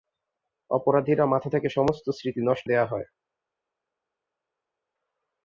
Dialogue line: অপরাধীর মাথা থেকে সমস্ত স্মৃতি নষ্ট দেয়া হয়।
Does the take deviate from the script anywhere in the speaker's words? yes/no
no